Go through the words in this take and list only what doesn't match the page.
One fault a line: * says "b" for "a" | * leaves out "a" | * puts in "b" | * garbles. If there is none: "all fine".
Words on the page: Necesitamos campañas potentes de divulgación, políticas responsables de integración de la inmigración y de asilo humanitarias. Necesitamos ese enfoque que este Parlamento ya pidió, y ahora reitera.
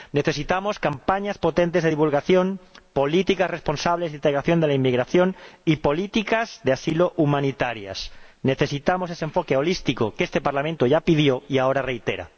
* puts in "políticas"
* puts in "holístico"